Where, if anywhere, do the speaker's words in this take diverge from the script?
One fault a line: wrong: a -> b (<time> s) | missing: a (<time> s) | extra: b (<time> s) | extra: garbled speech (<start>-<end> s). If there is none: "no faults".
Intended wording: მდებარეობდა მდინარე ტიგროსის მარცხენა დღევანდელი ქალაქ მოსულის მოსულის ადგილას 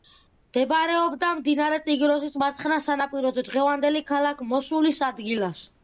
extra: სანაპიროზე (2.9 s)
missing: მოსულის (5.1 s)